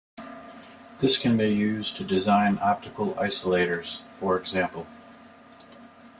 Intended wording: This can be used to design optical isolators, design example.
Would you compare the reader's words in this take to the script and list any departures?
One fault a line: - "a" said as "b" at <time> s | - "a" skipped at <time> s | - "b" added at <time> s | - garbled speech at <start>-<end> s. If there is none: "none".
- "design" said as "for" at 4.2 s